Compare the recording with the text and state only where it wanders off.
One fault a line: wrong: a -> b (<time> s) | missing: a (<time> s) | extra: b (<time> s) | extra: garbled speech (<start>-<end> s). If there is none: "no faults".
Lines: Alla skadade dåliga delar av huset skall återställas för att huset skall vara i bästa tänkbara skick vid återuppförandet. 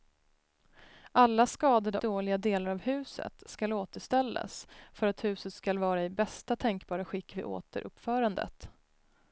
no faults